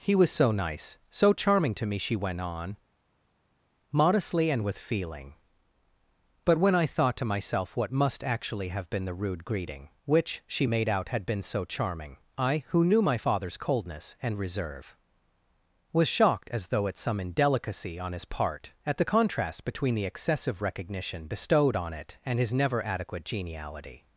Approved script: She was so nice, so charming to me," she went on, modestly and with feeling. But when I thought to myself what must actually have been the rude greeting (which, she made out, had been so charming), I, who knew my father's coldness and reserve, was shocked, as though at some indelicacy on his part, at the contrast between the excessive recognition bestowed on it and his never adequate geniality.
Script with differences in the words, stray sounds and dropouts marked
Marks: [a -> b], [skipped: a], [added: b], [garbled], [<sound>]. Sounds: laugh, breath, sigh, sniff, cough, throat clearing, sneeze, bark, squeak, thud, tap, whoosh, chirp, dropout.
[She -> He] was so nice, so charming to me," she went on, modestly and with feeling. But when I thought to myself what must actually have been the rude greeting (which, she made out, had been so charming), I, who knew my father's coldness and reserve, was shocked, as though at some indelicacy on his part, at the contrast between the excessive recognition bestowed on it and his never adequate geniality.